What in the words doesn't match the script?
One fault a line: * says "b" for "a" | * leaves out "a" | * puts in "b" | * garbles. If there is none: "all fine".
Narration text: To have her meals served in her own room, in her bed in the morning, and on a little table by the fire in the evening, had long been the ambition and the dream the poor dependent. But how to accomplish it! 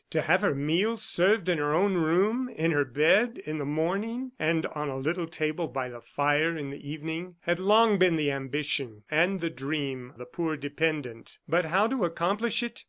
all fine